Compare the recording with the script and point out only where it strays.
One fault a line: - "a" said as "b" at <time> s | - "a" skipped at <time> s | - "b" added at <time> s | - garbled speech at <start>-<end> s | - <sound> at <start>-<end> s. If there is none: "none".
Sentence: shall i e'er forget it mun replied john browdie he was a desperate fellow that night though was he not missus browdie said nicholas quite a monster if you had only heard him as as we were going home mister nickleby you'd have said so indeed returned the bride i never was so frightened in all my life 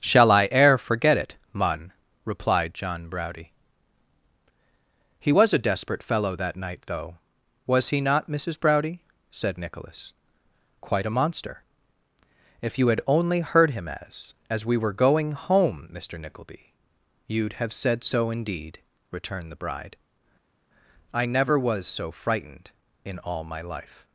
none